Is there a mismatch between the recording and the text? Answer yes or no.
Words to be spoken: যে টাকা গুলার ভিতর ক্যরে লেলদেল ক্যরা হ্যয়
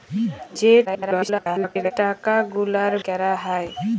yes